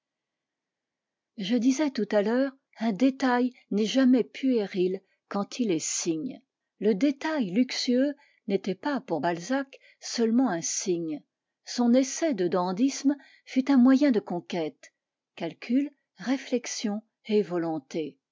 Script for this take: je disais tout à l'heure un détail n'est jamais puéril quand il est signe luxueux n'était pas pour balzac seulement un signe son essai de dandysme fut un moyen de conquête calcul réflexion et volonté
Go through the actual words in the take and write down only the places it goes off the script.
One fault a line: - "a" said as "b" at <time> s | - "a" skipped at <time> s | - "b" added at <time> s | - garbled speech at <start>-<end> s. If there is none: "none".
- "le détail" added at 6.8 s